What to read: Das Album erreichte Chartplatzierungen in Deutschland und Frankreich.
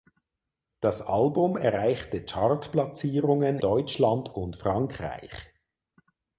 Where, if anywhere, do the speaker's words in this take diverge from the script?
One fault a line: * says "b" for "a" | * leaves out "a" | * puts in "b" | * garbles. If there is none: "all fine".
* leaves out "in"